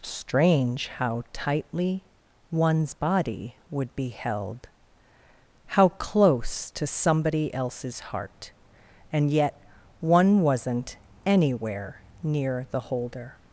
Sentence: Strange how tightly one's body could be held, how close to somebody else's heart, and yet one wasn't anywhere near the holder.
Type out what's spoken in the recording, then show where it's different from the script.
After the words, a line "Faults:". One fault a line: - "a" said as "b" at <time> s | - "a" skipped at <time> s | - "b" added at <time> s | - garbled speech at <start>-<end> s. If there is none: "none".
Strange how tightly one's body would be held, how close to somebody else's heart, and yet one wasn't anywhere near the holder.
Faults:
- "could" said as "would" at 3.7 s